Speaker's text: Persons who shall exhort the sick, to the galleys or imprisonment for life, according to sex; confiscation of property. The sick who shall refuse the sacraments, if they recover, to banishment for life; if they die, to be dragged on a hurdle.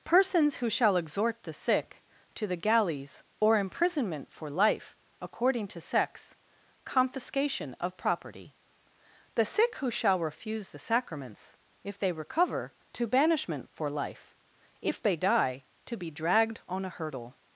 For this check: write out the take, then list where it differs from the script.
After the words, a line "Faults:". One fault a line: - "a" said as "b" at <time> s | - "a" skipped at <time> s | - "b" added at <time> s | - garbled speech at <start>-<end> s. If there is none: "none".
Persons who shall exhort the sick, to the galleys or imprisonment for life, according to sex; confiscation of property. The sick who shall refuse the sacraments, if they recover, to banishment for life; if they die, to be dragged on a hurdle.
Faults:
none